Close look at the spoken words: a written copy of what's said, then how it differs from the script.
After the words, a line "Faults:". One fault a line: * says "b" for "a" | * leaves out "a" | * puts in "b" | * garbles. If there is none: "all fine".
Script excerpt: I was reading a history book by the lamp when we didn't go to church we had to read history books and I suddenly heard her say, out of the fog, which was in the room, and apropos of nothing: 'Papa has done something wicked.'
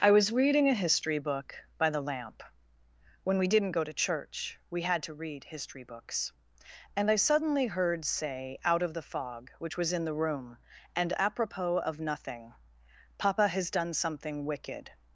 I was reading a history book by the lamp when we didn't go to church we had to read history books and I suddenly heard say, out of the fog, which was in the room, and apropos of nothing: 'Papa has done something wicked.'
Faults:
* leaves out "her"